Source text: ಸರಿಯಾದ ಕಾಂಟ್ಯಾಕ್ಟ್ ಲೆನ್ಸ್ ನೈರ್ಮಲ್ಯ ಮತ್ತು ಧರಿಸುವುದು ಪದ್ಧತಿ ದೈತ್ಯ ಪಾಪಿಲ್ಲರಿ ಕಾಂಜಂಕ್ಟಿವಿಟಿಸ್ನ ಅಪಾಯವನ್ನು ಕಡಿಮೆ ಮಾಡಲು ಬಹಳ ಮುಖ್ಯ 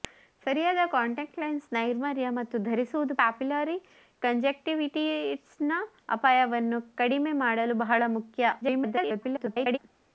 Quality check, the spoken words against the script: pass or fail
fail